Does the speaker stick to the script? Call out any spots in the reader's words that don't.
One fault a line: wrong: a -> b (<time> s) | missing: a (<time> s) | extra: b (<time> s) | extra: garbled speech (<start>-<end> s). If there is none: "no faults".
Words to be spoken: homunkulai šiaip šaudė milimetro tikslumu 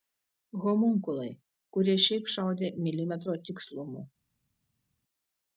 extra: kurie (1.8 s)